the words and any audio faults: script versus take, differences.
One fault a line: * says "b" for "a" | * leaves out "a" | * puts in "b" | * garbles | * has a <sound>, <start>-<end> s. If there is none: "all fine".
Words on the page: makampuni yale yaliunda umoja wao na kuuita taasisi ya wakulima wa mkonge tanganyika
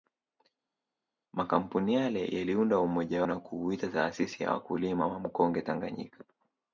* leaves out "wao"